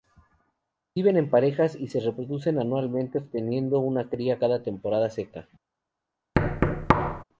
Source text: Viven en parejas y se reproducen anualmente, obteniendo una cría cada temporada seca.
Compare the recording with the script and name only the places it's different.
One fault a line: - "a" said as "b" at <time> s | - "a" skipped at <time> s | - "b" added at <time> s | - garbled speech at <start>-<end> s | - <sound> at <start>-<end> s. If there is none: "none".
- thud at 6.4-7.2 s